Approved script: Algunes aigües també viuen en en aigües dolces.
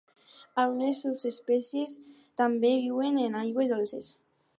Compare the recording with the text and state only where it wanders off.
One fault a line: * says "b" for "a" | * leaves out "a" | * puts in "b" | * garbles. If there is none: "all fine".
* says "subespècies" for "aigües"
* leaves out "en"